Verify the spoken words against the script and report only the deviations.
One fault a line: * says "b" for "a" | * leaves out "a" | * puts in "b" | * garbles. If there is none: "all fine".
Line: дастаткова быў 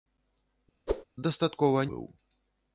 all fine